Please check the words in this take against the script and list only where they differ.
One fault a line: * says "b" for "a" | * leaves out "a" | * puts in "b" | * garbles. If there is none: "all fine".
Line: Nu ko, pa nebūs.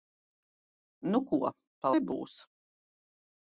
all fine